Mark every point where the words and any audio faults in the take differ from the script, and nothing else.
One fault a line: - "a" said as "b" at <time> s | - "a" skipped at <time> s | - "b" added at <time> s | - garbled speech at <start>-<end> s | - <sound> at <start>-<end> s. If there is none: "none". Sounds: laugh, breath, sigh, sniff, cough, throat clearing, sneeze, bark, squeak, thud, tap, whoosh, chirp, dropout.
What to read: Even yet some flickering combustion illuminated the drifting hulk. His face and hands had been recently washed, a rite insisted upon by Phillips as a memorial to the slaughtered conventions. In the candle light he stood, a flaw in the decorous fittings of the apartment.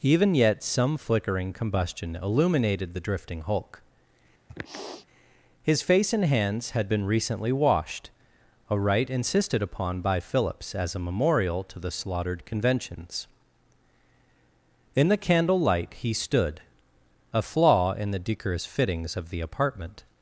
- sniff at 4.5-5.1 s